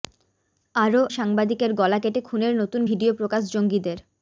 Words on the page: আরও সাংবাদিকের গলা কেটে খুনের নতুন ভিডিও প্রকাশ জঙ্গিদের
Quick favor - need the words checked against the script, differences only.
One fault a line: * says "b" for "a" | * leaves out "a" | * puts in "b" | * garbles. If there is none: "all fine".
all fine